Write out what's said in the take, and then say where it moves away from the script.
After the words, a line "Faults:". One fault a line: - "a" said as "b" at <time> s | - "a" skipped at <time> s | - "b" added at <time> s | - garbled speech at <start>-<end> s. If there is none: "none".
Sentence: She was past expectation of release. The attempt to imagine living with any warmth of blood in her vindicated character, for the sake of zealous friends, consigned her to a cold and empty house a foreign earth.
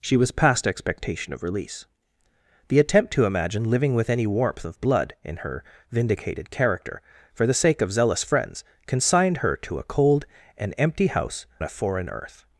She was past expectation of release. The attempt to imagine living with any warmth of blood in her vindicated character, for the sake of zealous friends, consigned her to a cold and empty house a foreign earth.
Faults:
none